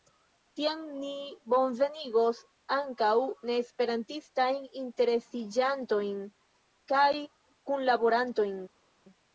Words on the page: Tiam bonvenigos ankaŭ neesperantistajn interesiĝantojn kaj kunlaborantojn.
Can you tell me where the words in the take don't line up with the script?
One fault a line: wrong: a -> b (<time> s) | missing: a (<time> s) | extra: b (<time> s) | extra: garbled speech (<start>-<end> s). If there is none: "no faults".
extra: ni (1.0 s)